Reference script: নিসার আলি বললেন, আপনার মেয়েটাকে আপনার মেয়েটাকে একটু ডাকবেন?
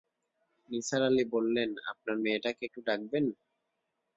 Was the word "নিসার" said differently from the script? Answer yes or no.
no